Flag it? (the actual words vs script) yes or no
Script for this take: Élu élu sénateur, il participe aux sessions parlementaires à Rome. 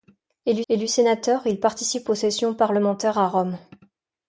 no